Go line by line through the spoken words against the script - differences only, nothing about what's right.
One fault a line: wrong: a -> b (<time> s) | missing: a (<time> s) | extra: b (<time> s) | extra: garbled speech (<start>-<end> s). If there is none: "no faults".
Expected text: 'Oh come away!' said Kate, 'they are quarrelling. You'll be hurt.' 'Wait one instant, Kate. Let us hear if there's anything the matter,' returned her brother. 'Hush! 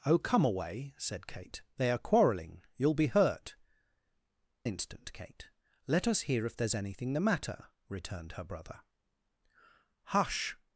missing: Wait one (3.5 s)